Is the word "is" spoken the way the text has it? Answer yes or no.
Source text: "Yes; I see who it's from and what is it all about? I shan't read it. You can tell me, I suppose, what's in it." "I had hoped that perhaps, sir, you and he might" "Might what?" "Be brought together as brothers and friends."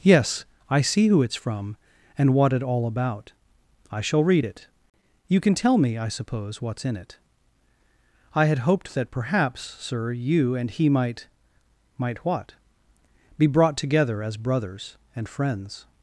no